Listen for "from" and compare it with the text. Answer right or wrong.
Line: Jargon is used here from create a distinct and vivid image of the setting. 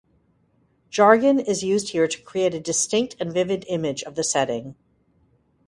wrong